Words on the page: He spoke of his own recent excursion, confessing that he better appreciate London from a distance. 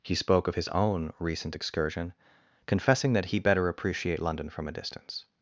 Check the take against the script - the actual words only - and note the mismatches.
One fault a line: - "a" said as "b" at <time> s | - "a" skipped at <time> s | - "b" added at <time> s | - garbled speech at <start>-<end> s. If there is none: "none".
none